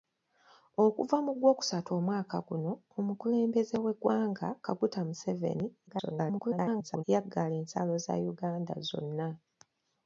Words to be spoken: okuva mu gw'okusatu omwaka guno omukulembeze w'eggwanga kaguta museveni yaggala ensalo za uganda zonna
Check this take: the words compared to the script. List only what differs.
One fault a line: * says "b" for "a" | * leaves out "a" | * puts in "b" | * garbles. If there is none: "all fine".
* garbles